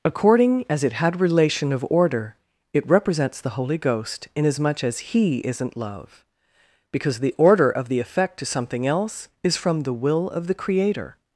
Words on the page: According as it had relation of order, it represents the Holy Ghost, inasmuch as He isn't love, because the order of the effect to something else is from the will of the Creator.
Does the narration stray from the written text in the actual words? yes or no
no